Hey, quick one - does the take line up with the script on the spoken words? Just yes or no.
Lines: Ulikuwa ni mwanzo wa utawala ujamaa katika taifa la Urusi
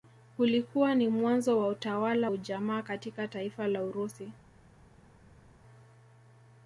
yes